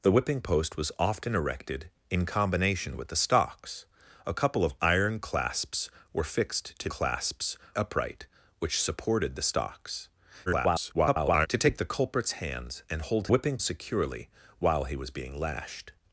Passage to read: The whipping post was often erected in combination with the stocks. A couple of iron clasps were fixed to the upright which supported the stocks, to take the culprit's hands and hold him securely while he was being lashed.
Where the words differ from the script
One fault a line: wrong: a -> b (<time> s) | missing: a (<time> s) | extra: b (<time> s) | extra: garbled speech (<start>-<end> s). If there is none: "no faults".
wrong: the -> clasps (6.9 s)
extra: garbled speech (10.5-11.5 s)
wrong: him -> whipping (13.3 s)